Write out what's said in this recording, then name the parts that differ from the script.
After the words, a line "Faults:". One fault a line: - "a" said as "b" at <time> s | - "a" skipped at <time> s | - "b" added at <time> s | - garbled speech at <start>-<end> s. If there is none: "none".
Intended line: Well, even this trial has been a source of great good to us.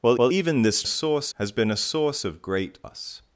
Well well, even this source has been a source of great us.
Faults:
- "well" added at 0.2 s
- "trial" said as "source" at 0.9 s
- "good to" skipped at 2.8 s